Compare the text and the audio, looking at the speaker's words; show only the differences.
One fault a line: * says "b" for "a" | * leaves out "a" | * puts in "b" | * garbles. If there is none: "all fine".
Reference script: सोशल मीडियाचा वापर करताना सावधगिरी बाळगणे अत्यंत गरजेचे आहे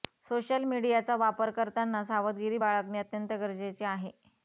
all fine